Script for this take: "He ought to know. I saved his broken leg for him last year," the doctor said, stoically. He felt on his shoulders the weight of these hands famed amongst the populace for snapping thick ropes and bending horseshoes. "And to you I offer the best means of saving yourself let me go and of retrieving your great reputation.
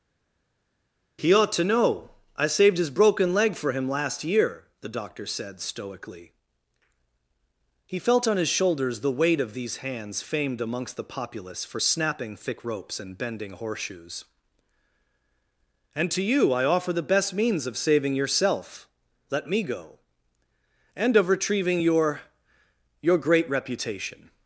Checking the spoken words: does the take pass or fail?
fail